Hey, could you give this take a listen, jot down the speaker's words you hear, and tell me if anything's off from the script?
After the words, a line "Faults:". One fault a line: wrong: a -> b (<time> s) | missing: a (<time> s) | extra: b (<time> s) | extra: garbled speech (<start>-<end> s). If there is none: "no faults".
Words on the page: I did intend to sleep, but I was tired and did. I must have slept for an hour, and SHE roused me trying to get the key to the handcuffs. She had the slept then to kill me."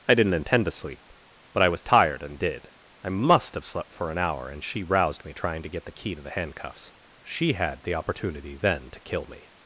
I didn't intend to sleep, but I was tired and did. I must have slept for an hour, and SHE roused me trying to get the key to the handcuffs. She had the opportunity then to kill me."
Faults:
wrong: did -> didn't (0.1 s)
wrong: slept -> opportunity (8.0 s)